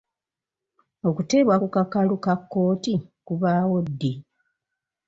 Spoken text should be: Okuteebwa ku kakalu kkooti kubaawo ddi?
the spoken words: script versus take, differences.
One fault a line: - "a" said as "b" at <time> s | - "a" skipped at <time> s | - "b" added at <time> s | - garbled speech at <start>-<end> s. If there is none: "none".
- "ka" added at 2.2 s